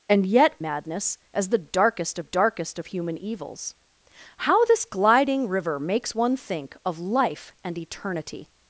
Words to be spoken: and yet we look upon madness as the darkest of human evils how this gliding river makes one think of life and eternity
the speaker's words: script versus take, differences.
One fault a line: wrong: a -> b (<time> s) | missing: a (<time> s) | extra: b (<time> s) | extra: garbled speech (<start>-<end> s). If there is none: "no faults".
missing: we look upon (0.6 s)
extra: darkest (2.2 s)